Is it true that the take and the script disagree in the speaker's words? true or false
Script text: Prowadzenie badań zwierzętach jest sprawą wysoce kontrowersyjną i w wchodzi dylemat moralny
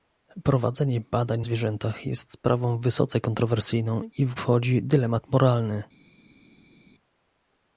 false